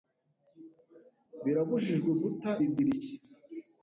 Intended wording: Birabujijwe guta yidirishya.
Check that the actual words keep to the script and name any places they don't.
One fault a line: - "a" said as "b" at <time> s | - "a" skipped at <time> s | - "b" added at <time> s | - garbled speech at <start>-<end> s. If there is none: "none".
none